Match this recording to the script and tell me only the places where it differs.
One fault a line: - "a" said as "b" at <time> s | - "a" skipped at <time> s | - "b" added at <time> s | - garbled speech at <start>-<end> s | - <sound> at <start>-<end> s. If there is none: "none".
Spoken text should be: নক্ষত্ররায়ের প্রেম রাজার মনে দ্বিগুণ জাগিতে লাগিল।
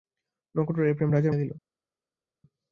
- "মনে দ্বিগুণ জাগিতে" skipped at 1.3 s